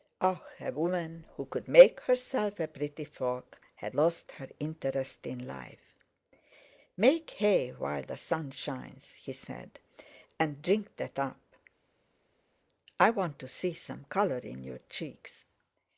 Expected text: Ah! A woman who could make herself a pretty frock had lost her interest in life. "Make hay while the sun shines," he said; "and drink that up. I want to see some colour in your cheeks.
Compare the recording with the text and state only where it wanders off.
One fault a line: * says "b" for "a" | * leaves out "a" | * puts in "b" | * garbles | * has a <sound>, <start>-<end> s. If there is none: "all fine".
all fine